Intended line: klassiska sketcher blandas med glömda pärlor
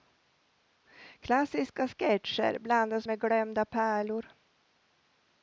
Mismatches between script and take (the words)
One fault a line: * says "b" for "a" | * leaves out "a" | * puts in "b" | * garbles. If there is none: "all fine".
all fine